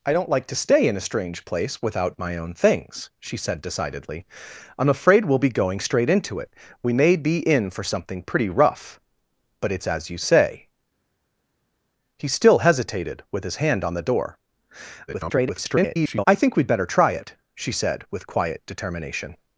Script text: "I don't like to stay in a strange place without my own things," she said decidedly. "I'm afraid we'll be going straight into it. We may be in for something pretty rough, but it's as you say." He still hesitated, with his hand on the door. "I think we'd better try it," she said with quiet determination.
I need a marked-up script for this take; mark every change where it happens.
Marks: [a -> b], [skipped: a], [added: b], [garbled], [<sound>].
"I don't like to stay in a strange place without my own things," she said decidedly. "I'm afraid we'll be going straight into it. We may be in for something pretty rough, but it's as you say." He still hesitated, with his hand on the door. [garbled] "I think we'd better try it," she said with quiet determination.